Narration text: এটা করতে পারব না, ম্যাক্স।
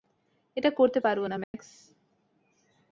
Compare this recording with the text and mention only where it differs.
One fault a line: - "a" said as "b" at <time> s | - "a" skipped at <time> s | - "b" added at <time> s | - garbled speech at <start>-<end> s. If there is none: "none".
none